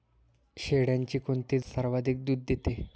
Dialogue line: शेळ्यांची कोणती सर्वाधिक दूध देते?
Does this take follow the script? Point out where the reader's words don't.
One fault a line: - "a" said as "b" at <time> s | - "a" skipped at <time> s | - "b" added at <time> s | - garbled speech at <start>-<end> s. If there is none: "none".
none